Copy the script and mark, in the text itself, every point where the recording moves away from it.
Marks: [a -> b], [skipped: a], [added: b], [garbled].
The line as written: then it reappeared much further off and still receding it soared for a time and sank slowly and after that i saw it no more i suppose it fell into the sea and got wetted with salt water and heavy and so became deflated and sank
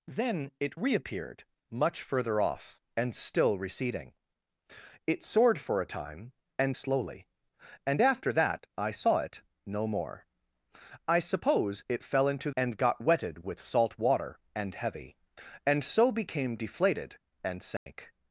then it reappeared much further off and still receding it soared for a time and [skipped: sank] slowly and after that i saw it no more i suppose it fell into [skipped: the sea] and got wetted with salt water and heavy and so became deflated and sank